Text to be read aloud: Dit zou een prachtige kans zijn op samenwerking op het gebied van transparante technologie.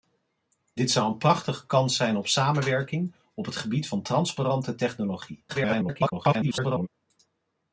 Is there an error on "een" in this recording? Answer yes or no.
no